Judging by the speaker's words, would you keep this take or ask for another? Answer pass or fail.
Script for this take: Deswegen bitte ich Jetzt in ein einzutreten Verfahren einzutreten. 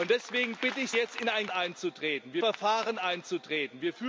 pass